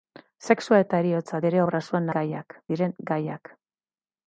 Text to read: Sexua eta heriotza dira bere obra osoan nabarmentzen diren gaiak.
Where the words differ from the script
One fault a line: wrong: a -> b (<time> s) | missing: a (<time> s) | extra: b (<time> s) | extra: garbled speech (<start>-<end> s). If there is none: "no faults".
missing: dira (1.4 s)
wrong: nabarmentzen -> gaiak (2.2 s)